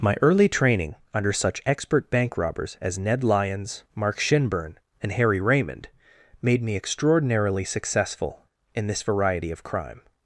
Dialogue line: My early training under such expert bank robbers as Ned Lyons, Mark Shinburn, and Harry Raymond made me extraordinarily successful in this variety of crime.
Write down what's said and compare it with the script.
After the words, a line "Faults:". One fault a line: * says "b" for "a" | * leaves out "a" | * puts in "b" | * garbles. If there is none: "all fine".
My early training under such expert bank robbers as Ned Lyons, Mark Shinburn, and Harry Raymond made me extraordinarily successful in this variety of crime.
Faults:
all fine